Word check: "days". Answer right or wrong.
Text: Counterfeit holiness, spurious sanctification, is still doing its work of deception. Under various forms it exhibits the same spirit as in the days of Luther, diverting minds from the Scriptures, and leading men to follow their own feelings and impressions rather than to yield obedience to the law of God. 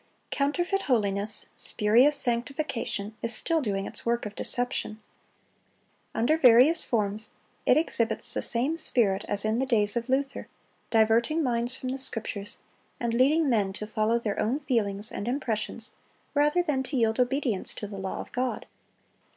right